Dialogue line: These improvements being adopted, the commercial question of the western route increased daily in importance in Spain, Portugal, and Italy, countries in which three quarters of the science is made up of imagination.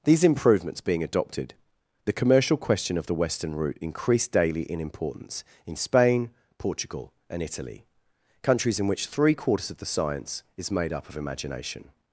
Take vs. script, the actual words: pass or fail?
pass